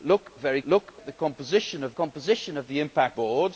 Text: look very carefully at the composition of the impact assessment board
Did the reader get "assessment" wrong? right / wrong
wrong